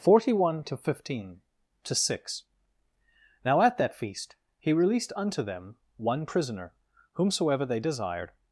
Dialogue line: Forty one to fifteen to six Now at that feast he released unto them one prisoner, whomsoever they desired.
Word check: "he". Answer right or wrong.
right